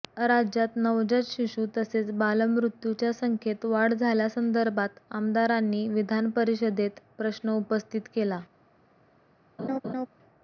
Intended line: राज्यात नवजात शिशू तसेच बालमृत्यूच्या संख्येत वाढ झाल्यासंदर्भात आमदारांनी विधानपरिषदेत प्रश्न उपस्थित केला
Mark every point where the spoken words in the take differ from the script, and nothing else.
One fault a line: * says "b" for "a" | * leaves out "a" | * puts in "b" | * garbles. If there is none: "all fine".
all fine